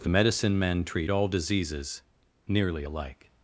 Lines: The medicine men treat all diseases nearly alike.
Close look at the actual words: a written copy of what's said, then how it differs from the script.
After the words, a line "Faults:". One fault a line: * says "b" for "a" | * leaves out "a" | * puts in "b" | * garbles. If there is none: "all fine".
The medicine men treat all diseases nearly alike.
Faults:
all fine